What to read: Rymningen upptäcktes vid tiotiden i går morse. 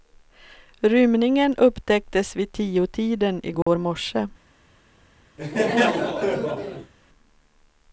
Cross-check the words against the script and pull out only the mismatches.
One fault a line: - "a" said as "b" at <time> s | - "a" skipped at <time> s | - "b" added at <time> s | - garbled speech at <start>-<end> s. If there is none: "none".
none